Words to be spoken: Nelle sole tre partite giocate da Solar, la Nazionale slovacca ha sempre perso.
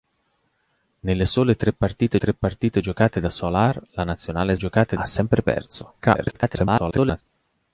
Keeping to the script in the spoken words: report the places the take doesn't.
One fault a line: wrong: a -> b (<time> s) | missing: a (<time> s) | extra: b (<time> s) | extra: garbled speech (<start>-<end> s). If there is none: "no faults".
extra: tre partite (2.2 s)
wrong: slovacca -> giocate (4.5 s)
extra: garbled speech (6.0-7.2 s)